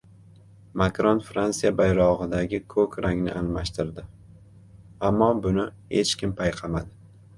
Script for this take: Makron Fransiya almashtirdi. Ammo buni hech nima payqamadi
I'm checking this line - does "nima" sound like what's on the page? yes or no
no